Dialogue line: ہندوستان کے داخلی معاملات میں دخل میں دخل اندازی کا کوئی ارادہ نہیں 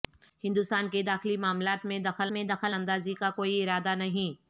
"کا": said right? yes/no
yes